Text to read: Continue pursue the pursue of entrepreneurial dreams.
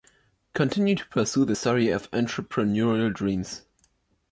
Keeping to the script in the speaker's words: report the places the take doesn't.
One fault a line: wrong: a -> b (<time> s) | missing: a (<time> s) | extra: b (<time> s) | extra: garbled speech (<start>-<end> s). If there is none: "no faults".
extra: to (0.9 s)
wrong: pursue -> story (1.5 s)